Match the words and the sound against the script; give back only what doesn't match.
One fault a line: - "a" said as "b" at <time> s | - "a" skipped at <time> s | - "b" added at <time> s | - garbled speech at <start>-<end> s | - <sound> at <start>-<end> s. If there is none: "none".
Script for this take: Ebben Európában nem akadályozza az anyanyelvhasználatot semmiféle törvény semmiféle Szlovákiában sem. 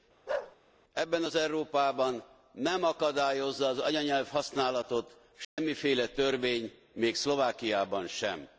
- bark at 0.3-0.6 s
- "az" added at 1.2 s
- dropout at 5.4-5.6 s
- "semmiféle" said as "még" at 6.9 s